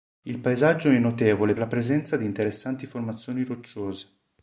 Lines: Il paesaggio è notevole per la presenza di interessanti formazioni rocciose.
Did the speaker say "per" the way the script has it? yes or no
no